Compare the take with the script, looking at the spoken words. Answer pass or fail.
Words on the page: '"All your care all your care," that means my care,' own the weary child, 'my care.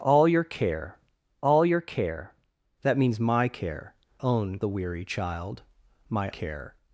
pass